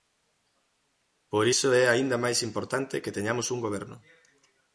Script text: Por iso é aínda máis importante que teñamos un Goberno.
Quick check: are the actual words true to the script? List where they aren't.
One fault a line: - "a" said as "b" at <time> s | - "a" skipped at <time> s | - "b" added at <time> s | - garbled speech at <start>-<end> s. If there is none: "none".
none